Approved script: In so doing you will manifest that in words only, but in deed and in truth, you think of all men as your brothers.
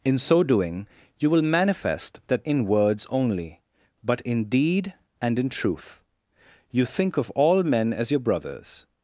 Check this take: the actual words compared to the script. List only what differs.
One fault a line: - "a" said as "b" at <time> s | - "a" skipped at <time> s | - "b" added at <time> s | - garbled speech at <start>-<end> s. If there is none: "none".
none